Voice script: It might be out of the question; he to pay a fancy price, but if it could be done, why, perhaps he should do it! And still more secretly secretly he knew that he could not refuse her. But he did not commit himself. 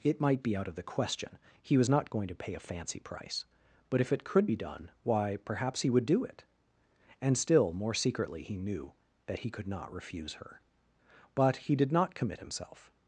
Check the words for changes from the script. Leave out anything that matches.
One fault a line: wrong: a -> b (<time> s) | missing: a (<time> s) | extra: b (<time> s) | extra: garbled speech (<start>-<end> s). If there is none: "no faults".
extra: was not going (1.8 s)
wrong: should -> would (5.9 s)
missing: secretly (8.4 s)